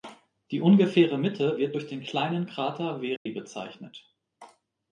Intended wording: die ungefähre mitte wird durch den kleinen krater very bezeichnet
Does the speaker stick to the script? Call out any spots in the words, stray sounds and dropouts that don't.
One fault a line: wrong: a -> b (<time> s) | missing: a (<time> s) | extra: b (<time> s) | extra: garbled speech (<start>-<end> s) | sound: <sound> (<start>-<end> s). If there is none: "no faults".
sound: dropout (3.2-3.3 s)